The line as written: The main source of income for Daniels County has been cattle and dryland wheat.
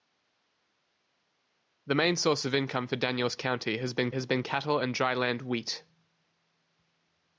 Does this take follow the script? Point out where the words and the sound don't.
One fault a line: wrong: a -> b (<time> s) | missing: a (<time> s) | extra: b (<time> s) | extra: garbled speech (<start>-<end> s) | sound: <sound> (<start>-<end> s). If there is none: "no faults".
extra: has been (4.1 s)